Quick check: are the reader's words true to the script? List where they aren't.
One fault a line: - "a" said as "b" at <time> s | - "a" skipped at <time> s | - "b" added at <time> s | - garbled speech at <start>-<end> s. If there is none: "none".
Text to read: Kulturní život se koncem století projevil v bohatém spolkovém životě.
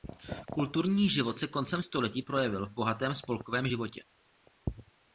none